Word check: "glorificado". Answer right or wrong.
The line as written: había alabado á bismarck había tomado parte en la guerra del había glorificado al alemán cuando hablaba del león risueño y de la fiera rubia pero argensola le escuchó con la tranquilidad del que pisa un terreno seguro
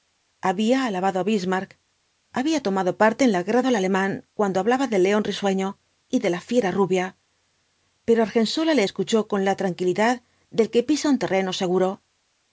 wrong